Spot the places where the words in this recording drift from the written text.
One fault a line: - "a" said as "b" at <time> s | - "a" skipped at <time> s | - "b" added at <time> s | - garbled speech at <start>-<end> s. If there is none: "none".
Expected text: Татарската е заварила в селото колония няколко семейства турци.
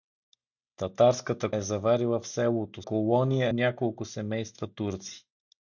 none